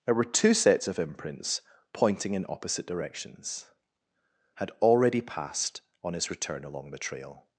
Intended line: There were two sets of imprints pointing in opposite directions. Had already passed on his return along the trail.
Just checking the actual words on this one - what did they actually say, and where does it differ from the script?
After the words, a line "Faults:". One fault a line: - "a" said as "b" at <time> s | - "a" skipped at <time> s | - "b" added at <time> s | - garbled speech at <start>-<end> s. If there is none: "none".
There were two sets of imprints pointing in opposite directions. Had already passed on his return along the trail.
Faults:
none